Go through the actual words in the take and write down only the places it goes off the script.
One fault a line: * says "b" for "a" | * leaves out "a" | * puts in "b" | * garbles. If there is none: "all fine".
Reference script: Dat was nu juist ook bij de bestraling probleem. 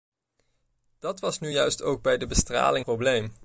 all fine